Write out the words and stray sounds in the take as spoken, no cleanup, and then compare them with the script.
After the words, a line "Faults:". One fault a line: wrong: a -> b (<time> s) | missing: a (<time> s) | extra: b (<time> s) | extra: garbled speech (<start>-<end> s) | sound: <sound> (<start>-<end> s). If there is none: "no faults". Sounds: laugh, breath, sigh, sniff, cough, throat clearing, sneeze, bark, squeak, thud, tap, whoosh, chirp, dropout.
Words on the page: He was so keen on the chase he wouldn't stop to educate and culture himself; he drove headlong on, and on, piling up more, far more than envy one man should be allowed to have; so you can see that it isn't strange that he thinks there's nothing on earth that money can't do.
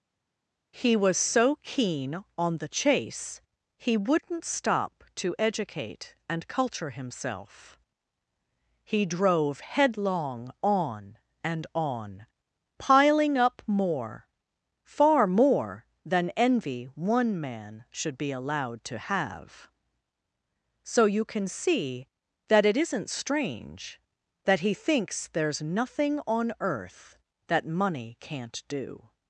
He was so keen on the chase he wouldn't stop to educate and culture himself; he drove headlong on, and on, piling up more, far more than envy one man should be allowed to have; so you can see that it isn't strange that he thinks there's nothing on earth that money can't do.
Faults:
no faults